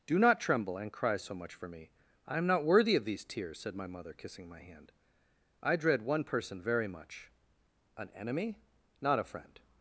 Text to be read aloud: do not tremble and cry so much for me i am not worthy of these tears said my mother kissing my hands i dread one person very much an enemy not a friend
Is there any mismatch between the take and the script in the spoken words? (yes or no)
yes